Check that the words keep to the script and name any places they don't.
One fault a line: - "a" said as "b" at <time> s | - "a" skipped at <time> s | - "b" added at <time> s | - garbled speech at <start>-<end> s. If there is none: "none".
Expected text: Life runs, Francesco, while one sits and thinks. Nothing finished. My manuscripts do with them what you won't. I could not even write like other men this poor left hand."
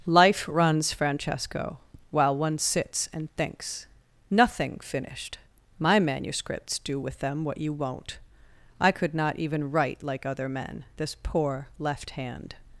none